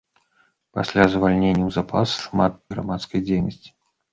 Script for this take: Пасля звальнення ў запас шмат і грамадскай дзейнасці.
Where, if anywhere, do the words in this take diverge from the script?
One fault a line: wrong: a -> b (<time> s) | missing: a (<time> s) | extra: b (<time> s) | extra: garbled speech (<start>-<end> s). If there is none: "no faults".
no faults